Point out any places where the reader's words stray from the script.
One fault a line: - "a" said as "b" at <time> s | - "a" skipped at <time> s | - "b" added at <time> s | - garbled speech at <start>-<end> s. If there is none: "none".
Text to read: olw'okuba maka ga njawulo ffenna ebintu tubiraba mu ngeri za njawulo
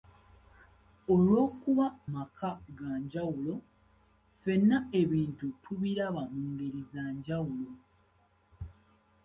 none